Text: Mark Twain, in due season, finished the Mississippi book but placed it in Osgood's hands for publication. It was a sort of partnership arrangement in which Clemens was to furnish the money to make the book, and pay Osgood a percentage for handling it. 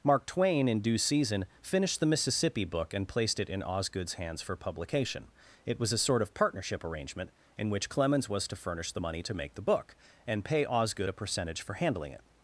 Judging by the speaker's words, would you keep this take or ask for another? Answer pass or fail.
fail